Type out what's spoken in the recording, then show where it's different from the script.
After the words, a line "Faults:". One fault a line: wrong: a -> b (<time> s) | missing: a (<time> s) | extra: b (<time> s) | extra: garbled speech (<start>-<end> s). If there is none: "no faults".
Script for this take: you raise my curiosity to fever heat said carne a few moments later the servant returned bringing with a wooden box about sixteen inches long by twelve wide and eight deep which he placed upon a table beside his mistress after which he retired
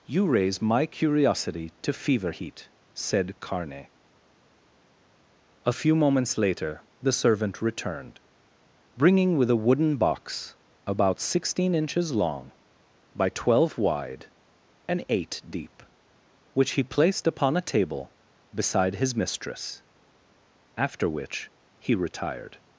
you raise my curiosity to fever heat said carne a few moments later the servant returned bringing with a wooden box about sixteen inches long by twelve wide and eight deep which he placed upon a table beside his mistress after which he retired
Faults:
no faults